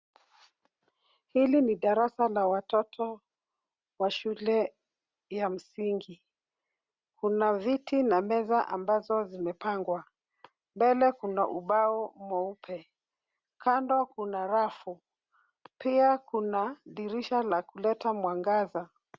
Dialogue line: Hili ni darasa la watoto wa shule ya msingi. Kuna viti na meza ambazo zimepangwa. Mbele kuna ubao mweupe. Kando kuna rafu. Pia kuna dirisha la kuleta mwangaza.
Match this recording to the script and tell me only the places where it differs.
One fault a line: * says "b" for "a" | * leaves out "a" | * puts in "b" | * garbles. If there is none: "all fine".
all fine